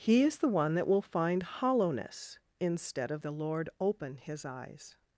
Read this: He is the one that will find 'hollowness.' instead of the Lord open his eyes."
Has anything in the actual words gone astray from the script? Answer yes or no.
no